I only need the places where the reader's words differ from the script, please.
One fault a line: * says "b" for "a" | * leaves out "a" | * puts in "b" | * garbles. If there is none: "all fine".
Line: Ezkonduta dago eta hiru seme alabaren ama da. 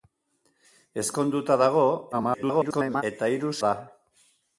* garbles
* leaves out "seme alabaren ama"